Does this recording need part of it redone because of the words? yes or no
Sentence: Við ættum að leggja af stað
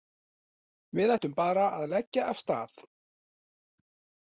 yes